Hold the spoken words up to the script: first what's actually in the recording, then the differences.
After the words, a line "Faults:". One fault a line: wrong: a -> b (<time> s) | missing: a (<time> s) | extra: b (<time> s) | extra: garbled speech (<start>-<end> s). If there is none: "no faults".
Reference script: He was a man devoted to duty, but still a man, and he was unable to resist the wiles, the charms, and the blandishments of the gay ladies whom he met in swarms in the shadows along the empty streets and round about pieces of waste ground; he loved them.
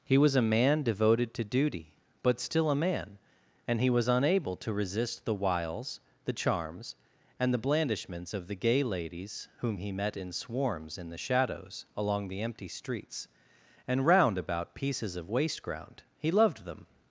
He was a man devoted to duty, but still a man, and he was unable to resist the wiles, the charms, and the blandishments of the gay ladies whom he met in swarms in the shadows along the empty streets and round about pieces of waste ground; he loved them.
Faults:
no faults